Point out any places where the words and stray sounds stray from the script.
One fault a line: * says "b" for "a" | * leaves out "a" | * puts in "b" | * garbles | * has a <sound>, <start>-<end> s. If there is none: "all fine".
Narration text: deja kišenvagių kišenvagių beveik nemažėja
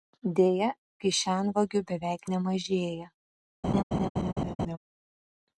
* leaves out "kišenvagių"
* has a laugh, 3.6-4.8 s